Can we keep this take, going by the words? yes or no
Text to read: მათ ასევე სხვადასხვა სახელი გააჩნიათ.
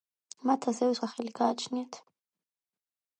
no